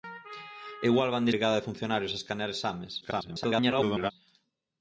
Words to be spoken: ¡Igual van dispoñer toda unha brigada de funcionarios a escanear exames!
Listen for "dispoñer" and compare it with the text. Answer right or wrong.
wrong